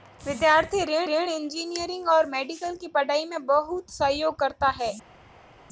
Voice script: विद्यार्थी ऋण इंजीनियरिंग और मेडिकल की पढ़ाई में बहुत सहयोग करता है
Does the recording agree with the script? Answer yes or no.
no